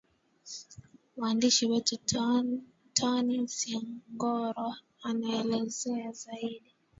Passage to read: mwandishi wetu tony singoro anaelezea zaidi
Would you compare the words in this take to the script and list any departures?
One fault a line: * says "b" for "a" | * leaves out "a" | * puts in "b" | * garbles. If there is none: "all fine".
all fine